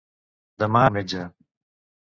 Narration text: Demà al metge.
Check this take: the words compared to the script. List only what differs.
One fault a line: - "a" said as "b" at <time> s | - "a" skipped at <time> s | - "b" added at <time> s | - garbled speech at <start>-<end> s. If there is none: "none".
none